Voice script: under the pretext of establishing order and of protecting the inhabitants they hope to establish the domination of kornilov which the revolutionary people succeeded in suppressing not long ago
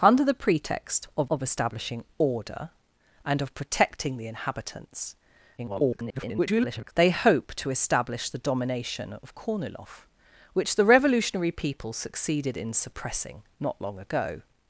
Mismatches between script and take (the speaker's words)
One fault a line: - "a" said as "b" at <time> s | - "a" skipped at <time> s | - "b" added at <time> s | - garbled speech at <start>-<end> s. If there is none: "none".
- "of" added at 1.3 s
- garbled speech at 5.6-6.9 s